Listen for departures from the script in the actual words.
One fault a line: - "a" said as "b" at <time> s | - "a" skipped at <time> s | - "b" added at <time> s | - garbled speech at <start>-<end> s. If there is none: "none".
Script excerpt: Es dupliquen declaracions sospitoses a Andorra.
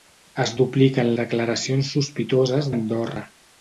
none